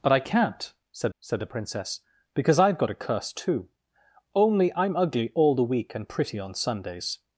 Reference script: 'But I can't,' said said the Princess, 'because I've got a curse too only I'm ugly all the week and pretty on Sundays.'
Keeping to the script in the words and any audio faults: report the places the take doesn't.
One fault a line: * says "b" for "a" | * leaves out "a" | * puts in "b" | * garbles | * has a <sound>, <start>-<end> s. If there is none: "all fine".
all fine